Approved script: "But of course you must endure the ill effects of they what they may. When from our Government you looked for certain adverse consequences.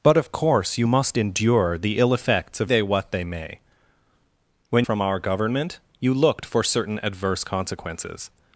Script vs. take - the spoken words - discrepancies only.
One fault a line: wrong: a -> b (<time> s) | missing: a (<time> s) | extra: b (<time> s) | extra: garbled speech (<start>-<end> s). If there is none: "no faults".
no faults